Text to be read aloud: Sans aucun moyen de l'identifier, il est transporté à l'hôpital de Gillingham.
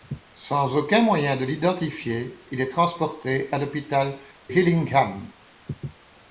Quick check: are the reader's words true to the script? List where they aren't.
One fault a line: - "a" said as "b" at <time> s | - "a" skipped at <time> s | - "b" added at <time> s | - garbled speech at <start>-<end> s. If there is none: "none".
- "de" skipped at 4.2 s